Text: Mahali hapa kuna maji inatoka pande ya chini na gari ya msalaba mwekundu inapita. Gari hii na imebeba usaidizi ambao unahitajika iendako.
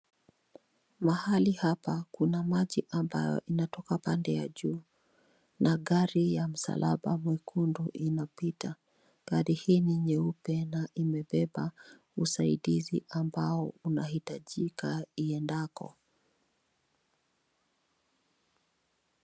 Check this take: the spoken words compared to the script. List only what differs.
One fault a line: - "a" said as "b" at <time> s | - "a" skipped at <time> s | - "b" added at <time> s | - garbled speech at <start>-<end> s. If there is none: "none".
- "ambayo" added at 2.9 s
- "chini" said as "juu" at 4.5 s
- "ni nyeupe" added at 9.8 s